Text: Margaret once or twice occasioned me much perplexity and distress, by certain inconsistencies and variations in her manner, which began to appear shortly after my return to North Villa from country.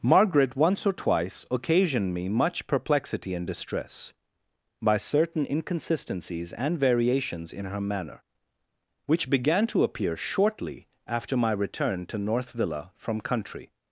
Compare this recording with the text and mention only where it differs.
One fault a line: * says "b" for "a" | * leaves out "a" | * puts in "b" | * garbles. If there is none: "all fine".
all fine